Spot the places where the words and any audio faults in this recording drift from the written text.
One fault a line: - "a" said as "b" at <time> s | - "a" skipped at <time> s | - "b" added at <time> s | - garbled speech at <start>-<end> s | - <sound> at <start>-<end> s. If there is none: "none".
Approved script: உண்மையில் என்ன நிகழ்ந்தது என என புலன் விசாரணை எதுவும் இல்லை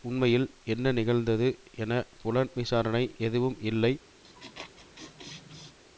- "என" skipped at 1.9 s
- laugh at 4.2-5.8 s